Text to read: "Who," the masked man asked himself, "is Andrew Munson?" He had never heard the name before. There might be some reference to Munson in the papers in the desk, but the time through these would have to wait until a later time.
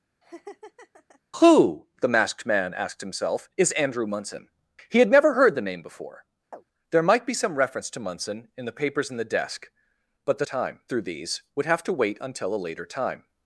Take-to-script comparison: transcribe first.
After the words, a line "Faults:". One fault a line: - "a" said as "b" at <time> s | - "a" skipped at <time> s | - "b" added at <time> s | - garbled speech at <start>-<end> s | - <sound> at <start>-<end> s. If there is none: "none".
"Who," the masked man asked himself, "is Andrew Munson?" He had never heard the name before. There might be some reference to Munson in the papers in the desk, but the time through these would have to wait until a later time.
Faults:
- laugh at 0.2-1.2 s
- chirp at 6.5-6.7 s